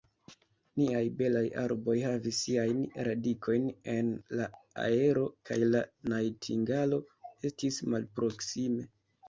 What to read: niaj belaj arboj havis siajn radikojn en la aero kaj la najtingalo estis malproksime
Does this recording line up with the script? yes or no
yes